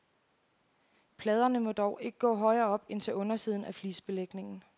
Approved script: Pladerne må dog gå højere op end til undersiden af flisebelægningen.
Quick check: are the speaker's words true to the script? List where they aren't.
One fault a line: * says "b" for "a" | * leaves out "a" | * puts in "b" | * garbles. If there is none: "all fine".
* puts in "ikke"